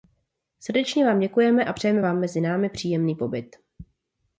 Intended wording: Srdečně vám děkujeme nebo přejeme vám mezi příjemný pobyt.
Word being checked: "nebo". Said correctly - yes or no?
no